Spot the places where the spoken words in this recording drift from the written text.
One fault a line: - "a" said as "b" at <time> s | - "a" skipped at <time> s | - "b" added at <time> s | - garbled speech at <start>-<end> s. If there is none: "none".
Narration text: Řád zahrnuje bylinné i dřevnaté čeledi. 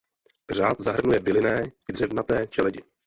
none